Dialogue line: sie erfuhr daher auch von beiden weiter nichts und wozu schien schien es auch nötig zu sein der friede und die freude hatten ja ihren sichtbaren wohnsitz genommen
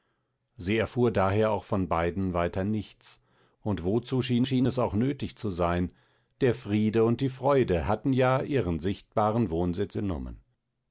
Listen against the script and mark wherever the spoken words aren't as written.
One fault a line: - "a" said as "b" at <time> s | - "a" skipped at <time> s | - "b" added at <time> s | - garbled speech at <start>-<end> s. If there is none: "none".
none